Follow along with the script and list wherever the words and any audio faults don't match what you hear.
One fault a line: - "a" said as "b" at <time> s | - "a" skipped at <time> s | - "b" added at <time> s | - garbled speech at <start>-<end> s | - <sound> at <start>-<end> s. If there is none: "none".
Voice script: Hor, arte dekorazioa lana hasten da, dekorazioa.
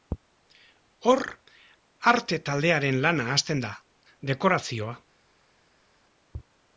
- "dekorazioa" said as "taldearen" at 2.5 s